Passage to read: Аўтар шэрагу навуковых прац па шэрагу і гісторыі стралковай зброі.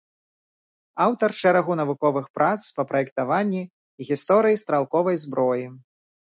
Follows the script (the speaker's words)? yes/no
no